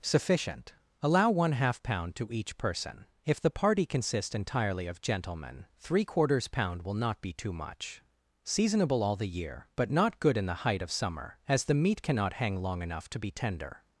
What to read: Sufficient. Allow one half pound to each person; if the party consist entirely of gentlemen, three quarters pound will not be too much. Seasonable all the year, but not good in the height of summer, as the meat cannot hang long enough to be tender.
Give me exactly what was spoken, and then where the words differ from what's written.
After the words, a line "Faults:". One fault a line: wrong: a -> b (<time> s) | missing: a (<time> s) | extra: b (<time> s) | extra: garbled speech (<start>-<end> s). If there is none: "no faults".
Sufficient. Allow one half pound to each person; if the party consists entirely of gentlemen, three quarters pound will not be too much. Seasonable all the year, but not good in the height of summer, as the meat cannot hang long enough to be tender.
Faults:
wrong: consist -> consists (3.9 s)